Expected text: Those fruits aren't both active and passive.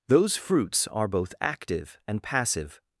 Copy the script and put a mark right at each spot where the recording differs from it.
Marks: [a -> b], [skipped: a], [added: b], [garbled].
Those fruits [aren't -> are] both active and passive.